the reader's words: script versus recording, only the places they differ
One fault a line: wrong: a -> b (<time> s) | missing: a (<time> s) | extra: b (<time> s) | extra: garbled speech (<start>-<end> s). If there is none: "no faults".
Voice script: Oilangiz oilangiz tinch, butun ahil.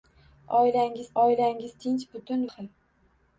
no faults